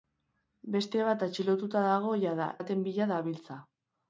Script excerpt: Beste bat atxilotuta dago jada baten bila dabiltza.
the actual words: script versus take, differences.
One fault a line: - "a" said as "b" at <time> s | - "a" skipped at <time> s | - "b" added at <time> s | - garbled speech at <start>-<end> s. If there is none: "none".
none